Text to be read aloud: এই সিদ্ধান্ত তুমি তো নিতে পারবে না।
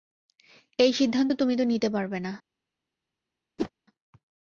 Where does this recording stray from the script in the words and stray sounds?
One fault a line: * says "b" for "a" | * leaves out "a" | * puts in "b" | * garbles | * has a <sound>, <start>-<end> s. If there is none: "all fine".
* has a whoosh, 3.6-3.7 s